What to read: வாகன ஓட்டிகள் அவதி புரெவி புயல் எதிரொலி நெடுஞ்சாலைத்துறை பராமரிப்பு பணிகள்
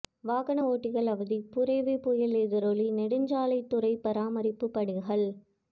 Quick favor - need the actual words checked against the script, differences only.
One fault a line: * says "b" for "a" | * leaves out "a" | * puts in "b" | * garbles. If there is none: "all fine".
all fine